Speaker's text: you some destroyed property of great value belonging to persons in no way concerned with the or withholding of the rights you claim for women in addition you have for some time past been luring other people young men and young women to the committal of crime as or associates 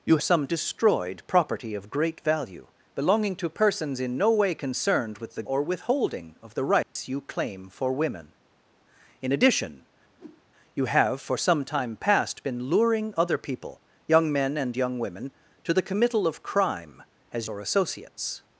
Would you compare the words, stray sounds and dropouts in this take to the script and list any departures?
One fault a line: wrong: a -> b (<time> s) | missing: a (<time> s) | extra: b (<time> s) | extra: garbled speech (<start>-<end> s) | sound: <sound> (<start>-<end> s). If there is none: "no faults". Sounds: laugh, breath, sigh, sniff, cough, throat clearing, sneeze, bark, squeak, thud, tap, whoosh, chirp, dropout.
sound: dropout (6.8-7.0 s)
sound: whoosh (10.2-10.4 s)